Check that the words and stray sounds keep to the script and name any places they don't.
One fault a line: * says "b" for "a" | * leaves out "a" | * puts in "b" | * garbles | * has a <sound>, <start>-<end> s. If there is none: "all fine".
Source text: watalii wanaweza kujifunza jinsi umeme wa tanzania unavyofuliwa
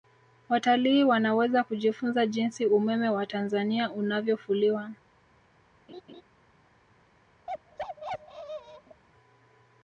* has a laugh, 5.9-6.2 s
* has a bark, 7.5-9.0 s